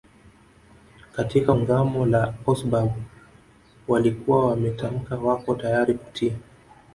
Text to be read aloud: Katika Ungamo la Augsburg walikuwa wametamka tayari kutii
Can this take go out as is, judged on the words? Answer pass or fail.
fail